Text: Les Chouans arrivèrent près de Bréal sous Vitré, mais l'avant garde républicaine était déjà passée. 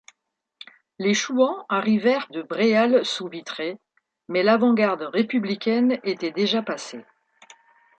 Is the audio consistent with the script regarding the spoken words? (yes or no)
no